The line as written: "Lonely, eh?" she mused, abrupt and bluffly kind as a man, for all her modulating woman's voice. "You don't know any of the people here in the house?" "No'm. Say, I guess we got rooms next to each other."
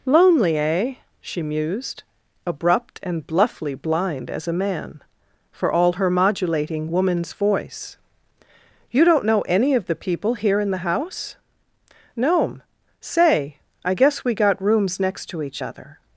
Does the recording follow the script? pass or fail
fail